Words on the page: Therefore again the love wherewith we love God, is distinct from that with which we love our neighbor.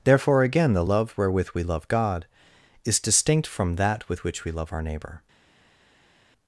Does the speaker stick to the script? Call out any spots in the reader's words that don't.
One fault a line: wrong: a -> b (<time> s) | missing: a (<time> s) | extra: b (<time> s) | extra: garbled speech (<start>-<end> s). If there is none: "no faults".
no faults